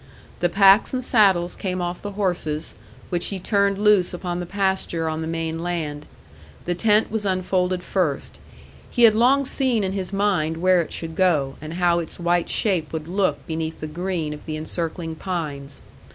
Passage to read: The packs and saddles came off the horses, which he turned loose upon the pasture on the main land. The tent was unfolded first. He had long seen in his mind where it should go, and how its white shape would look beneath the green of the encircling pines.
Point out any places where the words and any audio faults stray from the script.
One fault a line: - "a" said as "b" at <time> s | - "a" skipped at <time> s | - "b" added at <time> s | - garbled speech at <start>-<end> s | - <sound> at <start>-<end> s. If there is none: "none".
none